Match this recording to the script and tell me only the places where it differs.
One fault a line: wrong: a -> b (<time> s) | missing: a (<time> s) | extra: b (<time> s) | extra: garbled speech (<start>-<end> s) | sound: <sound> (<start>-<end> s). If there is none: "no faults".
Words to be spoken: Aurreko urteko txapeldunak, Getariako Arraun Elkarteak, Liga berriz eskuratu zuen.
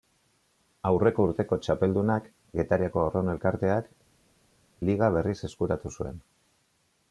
no faults